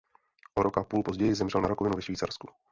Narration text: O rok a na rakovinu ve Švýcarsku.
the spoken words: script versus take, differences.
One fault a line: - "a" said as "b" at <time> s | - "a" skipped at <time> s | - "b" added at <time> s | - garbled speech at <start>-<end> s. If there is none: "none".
- "půl později zemřel" added at 0.8 s